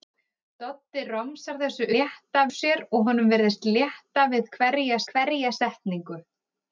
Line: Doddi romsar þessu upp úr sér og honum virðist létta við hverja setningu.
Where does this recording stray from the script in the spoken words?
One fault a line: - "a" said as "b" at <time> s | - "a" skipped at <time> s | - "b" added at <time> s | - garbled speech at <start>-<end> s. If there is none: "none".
- "upp" said as "létta" at 1.9 s
- "hverja" added at 5.1 s